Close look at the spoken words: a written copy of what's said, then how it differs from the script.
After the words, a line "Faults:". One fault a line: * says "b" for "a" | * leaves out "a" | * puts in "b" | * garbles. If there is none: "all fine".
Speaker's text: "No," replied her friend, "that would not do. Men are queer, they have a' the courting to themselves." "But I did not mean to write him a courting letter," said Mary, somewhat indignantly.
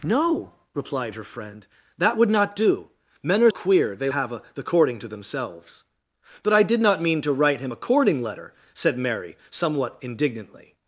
"No," replied her friend, "that would not do. Men are queer, they have a' the courting to themselves." "But I did not mean to write him a courting letter," said Mary, somewhat indignantly.
Faults:
all fine